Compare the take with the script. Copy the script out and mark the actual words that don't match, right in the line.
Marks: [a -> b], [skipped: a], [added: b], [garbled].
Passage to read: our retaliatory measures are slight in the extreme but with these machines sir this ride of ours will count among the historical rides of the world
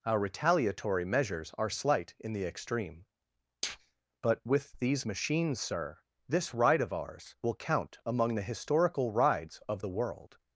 our retaliatory measures are slight in the extreme but with these machines sir this ride of ours will count among the historical rides of the world